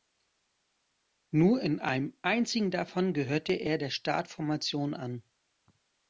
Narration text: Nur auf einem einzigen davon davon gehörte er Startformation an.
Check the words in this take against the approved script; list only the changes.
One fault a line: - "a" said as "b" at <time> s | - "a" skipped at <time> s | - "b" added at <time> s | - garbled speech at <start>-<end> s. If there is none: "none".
- "auf" said as "in" at 1.6 s
- "davon" skipped at 3.1 s
- "der" added at 3.8 s